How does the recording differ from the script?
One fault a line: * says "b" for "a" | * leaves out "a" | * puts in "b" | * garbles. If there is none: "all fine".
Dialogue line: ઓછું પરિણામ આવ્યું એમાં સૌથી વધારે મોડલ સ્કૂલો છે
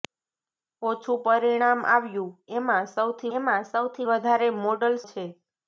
* puts in "એમાં સૌથી"
* leaves out "સ્કૂલો"